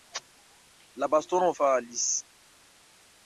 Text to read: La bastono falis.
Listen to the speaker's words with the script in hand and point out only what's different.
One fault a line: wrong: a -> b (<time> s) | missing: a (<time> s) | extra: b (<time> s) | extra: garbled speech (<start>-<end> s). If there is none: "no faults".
no faults